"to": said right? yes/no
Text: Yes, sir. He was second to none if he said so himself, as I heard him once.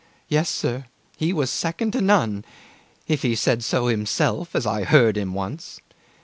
yes